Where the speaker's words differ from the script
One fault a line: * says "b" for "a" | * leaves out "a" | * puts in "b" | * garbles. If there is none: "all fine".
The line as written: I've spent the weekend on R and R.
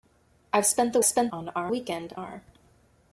* says "spent" for "weekend"
* says "weekend" for "and"